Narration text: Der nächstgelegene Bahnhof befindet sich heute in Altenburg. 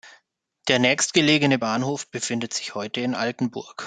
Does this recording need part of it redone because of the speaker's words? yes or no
no